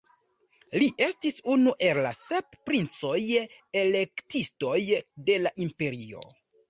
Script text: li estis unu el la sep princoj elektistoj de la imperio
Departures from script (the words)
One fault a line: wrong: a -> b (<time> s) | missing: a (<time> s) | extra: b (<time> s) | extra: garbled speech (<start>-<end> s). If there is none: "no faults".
no faults